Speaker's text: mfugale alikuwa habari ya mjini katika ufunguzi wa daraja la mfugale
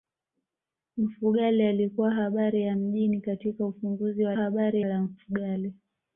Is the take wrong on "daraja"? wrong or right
wrong